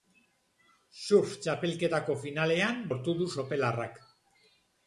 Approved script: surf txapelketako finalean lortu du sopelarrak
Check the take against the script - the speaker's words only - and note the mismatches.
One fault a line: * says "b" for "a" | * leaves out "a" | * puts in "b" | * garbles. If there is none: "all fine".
all fine